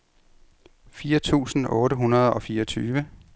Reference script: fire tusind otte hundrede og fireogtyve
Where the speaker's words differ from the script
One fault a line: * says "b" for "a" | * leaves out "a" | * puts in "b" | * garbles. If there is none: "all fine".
all fine